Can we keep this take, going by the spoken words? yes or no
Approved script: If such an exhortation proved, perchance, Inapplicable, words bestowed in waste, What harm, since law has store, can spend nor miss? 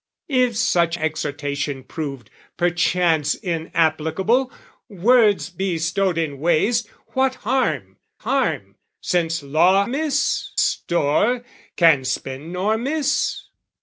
no